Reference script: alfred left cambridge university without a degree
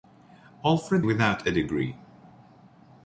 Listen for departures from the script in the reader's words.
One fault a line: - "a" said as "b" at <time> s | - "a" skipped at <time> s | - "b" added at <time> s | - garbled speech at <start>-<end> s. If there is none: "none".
- "left cambridge university" skipped at 1.1 s